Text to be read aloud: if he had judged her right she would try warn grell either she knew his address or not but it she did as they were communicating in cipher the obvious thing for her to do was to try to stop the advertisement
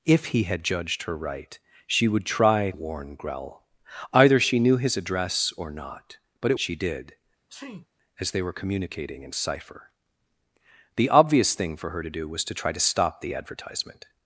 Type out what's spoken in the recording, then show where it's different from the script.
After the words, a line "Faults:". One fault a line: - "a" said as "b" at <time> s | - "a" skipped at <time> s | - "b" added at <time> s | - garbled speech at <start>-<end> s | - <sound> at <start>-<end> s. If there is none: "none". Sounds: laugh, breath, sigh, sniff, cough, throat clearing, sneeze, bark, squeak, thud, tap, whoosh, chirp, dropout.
if he had judged her right she would try warn grell either she knew his address or not but it she did as they were communicating in cipher the obvious thing for her to do was to try to stop the advertisement
Faults:
- sneeze at 7.5-7.9 s